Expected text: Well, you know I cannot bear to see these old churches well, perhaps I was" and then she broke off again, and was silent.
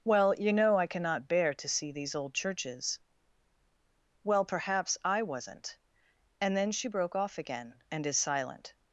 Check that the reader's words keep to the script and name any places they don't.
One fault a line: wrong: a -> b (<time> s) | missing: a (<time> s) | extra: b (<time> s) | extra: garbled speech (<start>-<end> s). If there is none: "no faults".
wrong: was -> wasn't (5.2 s)
wrong: was -> is (8.1 s)